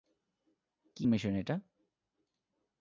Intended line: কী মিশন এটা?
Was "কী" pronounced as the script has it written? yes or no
yes